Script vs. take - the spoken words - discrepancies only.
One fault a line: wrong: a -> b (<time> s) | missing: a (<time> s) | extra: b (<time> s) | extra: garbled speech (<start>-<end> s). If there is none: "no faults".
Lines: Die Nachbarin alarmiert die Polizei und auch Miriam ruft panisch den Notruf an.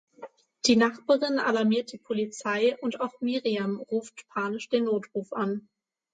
no faults